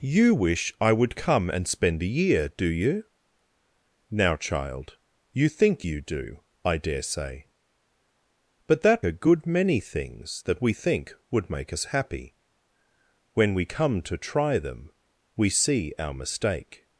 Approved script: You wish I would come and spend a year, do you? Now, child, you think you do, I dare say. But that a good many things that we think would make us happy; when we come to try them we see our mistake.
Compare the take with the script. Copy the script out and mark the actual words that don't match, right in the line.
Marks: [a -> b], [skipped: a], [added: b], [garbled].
You wish I would come and spend a year, do you? Now, child, you think you do, I dare say. But that a good many things that we think would make us happy; when we come to try them we see our mistake.